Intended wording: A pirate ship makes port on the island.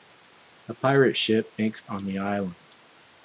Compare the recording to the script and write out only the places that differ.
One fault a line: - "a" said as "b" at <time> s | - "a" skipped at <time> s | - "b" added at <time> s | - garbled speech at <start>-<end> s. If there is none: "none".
- "port" skipped at 1.8 s